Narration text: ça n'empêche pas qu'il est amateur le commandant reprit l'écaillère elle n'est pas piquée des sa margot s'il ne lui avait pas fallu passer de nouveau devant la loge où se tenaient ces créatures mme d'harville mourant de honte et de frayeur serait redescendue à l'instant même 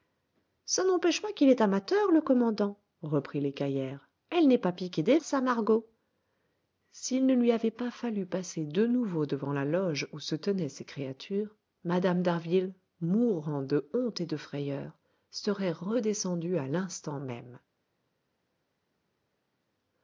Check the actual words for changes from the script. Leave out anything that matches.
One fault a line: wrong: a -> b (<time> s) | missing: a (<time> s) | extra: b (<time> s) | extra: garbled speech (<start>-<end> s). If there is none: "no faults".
no faults